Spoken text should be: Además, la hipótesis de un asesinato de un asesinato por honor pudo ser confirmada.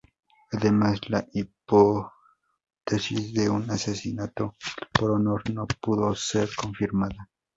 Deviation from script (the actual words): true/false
true